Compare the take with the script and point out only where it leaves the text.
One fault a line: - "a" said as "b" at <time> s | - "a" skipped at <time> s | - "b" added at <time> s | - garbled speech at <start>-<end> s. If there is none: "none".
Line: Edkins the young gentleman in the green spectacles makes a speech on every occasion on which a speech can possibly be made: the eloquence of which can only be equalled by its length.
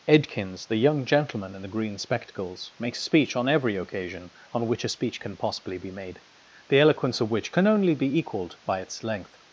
none